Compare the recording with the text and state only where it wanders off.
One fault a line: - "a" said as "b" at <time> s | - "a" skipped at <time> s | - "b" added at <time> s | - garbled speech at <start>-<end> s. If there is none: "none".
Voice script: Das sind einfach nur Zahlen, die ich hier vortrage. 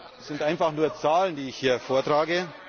none